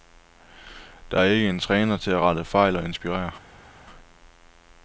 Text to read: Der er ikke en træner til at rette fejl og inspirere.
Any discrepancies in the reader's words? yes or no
no